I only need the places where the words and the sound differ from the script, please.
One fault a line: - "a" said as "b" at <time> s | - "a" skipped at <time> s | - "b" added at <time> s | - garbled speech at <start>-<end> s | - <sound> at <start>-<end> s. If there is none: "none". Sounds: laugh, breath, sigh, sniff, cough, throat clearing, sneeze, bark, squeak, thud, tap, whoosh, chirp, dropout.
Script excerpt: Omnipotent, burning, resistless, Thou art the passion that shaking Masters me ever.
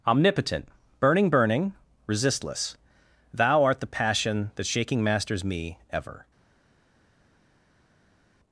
- "burning" added at 1.3 s